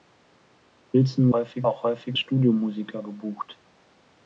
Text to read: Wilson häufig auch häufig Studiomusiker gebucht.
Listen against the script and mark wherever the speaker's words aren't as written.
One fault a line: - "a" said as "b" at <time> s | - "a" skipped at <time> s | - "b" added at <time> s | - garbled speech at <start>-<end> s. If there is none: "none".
none